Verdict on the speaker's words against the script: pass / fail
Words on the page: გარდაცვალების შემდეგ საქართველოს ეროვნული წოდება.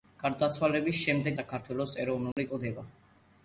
pass